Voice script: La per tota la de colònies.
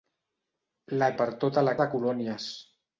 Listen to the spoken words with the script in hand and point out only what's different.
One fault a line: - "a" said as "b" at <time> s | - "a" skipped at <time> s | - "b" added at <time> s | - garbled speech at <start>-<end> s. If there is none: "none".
none